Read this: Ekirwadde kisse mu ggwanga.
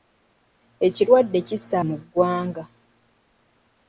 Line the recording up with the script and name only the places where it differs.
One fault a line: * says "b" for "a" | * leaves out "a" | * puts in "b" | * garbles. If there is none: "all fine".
all fine